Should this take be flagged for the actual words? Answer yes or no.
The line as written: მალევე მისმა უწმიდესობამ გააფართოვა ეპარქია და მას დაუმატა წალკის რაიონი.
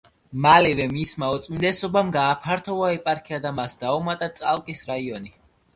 no